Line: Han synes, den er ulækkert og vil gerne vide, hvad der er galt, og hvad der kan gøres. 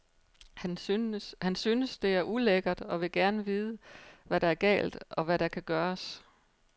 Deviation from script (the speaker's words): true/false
true